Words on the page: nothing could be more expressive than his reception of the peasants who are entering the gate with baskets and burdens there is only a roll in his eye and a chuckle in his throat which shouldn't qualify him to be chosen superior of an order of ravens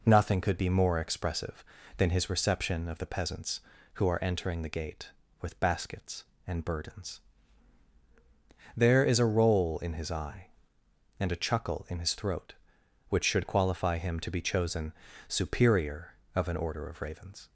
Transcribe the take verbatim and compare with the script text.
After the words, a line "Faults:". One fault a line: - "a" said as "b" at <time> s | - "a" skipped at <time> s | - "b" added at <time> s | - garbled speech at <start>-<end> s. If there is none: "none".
nothing could be more expressive than his reception of the peasants who are entering the gate with baskets and burdens there is a roll in his eye and a chuckle in his throat which should qualify him to be chosen superior of an order of ravens
Faults:
- "only" skipped at 9.2 s
- "shouldn't" said as "should" at 13.2 s